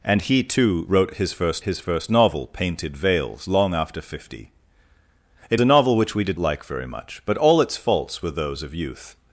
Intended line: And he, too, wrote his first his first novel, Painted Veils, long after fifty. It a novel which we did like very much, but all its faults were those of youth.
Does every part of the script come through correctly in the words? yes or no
yes